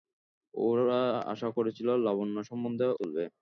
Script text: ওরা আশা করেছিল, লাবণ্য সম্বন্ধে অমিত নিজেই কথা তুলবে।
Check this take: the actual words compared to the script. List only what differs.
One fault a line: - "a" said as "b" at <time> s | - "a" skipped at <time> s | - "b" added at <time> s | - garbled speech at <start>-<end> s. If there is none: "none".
- "অমিত নিজেই কথা" skipped at 2.9 s